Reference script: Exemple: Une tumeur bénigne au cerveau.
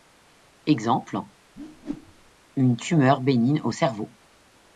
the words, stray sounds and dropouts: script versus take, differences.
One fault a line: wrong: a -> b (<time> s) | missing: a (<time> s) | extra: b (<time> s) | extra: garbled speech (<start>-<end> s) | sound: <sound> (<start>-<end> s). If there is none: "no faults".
sound: whoosh (1.6-2.3 s)